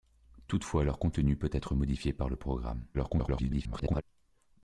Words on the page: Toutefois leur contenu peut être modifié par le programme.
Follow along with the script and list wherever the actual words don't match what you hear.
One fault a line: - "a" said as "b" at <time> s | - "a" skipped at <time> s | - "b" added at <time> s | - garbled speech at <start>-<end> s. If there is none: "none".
- garbled speech at 2.9-4.0 s